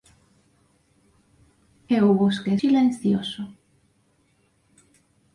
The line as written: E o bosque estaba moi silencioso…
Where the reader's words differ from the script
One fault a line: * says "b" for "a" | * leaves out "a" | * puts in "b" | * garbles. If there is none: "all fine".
* leaves out "estaba moi"